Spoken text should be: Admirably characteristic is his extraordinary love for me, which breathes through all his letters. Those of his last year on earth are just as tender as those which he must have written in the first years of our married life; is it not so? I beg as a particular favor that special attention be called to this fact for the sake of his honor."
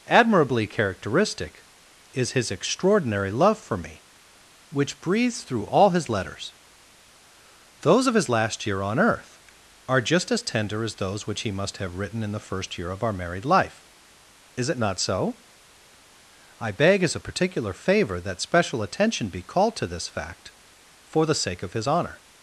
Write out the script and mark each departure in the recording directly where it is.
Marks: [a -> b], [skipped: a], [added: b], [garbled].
Admirably characteristic is his extraordinary love for me, which breathes through all his letters. Those of his last year on earth are just as tender as those which he must have written in the first [years -> year] of our married life; is it not so? I beg as a particular favor that special attention be called to this fact for the sake of his honor."